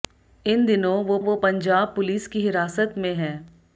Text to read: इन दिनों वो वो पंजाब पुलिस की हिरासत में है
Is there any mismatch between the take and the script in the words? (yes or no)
no